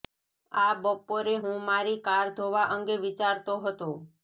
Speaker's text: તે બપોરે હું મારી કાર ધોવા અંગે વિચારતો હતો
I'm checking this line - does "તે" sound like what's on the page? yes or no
no